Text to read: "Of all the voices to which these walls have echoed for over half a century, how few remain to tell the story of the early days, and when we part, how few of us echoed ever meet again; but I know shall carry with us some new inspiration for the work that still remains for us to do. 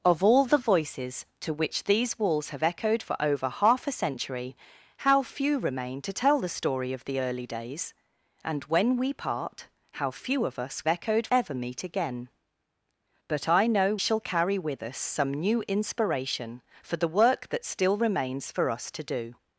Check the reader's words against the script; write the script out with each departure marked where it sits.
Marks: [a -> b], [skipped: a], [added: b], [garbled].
"Of all the voices to which these walls have echoed for over half a century, how few remain to tell the story of the early days, and when we part, how few of us echoed ever meet again; but I know shall carry with us some new inspiration for the work that still remains for us to do.